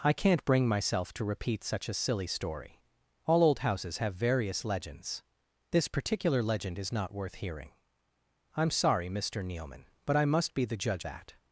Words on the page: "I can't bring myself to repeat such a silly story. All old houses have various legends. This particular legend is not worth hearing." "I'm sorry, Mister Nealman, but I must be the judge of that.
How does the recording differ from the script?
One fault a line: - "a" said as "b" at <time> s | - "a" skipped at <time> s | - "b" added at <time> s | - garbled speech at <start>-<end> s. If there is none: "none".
- "of" skipped at 11.1 s